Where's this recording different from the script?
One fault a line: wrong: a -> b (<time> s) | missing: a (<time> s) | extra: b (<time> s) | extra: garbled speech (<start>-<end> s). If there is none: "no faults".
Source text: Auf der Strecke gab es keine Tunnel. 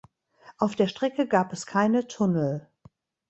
no faults